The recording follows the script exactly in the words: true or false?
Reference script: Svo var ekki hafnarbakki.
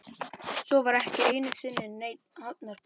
false